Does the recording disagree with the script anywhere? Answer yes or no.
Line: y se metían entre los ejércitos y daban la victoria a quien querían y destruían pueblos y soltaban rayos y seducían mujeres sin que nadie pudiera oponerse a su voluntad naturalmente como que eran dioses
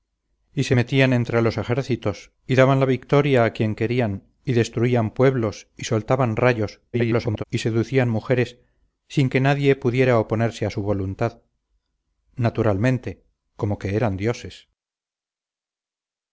yes